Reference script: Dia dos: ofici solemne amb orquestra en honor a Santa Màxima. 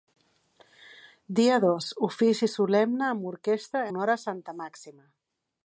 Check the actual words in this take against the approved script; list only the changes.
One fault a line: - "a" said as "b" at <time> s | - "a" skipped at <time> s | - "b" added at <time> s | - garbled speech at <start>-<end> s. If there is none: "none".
- "en" skipped at 3.9 s